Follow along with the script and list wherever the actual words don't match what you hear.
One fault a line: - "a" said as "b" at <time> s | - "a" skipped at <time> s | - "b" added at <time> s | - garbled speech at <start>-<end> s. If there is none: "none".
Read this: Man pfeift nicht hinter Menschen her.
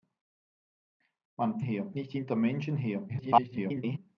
- "pfeift" said as "her" at 1.6 s
- garbled speech at 3.1-4.0 s